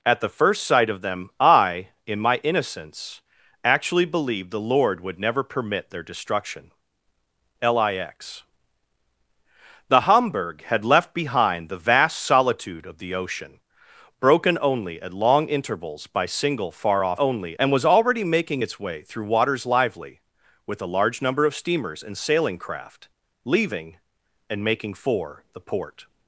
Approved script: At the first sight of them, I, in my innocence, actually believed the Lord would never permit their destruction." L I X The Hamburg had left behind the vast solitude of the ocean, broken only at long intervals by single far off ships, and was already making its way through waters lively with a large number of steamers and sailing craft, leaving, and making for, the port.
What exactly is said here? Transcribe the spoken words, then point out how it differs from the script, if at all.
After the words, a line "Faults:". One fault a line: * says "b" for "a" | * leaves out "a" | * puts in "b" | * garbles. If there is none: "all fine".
At the first sight of them, I, in my innocence, actually believed the Lord would never permit their destruction." L I X The Hamburg had left behind the vast solitude of the ocean, broken only at long intervals by single far off only, and was already making its way through waters lively with a large number of steamers and sailing craft, leaving, and making for, the port.
Faults:
* says "only" for "ships"